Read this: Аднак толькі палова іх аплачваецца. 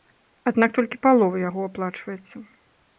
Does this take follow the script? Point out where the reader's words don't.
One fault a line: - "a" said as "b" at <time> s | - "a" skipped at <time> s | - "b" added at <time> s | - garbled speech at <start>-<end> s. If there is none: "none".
- "іх" said as "яго" at 1.5 s